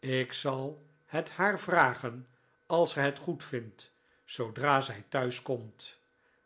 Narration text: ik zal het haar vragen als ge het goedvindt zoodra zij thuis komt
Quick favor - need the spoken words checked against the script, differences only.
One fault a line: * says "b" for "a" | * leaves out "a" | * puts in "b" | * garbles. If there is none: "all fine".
all fine